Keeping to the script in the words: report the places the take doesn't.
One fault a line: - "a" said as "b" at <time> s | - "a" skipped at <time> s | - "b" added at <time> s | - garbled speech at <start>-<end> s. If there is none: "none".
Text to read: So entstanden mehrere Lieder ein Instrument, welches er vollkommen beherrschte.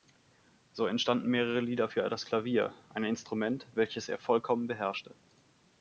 - "für das Klavier" added at 1.8 s